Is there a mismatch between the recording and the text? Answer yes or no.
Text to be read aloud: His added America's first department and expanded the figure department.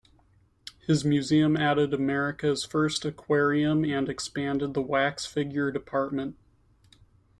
yes